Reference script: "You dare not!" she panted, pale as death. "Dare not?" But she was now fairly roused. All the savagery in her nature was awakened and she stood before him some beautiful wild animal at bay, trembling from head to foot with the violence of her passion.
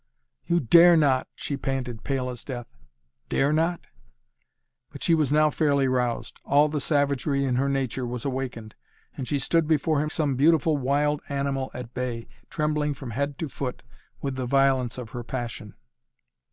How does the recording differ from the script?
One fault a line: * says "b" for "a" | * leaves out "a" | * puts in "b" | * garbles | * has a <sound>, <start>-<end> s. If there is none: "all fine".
all fine